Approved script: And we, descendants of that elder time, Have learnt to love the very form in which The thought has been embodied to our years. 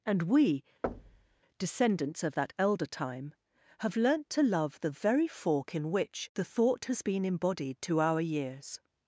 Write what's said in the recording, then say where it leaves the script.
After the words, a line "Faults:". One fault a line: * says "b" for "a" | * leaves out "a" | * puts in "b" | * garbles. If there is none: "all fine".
And we, descendants of that elder time, Have learnt to love the very fork in which The thought has been embodied to our years.
Faults:
* says "fork" for "form"